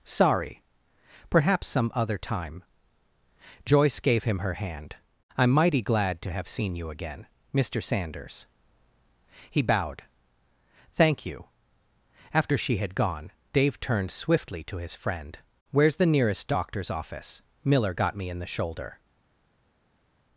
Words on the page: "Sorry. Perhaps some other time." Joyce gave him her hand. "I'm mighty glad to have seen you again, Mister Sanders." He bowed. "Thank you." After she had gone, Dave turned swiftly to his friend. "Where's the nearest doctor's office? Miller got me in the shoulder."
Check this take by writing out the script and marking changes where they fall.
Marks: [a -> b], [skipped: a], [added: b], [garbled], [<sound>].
"Sorry. Perhaps some other time." Joyce gave him her hand. "I'm mighty glad to have seen you again, Mister Sanders." He bowed. "Thank you." After she had gone, Dave turned swiftly to his friend. "Where's the nearest doctor's office? Miller got me in the shoulder."